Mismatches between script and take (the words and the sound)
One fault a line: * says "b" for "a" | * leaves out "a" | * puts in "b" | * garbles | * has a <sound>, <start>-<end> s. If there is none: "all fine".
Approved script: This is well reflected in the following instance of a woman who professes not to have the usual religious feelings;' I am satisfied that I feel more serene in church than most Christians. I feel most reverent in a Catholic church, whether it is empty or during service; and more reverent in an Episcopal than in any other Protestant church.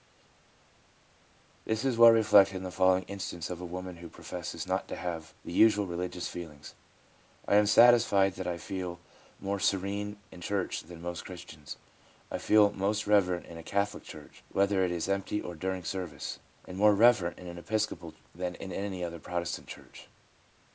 all fine